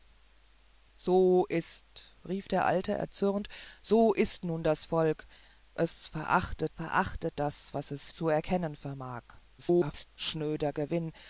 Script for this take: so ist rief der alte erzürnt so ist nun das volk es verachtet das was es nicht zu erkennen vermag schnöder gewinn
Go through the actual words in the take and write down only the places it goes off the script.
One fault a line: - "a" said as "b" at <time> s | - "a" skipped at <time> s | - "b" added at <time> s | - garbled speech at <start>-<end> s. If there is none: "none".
- "verachtet" added at 6.7 s
- "nicht" skipped at 8.1 s
- garbled speech at 9.6-10.1 s